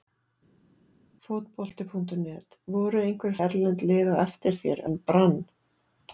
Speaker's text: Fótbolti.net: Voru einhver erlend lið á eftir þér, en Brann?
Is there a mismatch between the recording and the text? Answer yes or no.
no